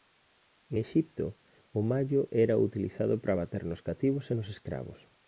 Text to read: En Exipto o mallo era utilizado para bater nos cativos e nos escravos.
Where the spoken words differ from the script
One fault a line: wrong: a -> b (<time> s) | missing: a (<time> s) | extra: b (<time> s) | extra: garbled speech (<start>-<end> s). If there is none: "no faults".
no faults